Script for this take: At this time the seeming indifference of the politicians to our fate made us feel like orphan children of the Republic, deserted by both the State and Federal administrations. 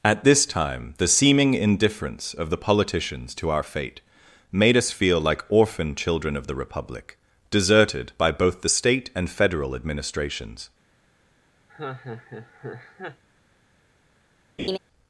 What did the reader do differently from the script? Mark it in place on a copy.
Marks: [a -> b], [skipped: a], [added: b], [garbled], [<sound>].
At this time the seeming indifference of the politicians to our fate made us feel like orphan children of the Republic, deserted by both the State and Federal administrations. [laugh] [laugh]